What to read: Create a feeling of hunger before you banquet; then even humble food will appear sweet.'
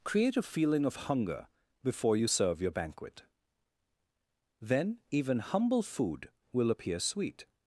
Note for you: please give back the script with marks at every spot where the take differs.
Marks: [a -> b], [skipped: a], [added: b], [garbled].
Create a feeling of hunger before you [added: serve your] banquet; then even humble food will appear sweet.'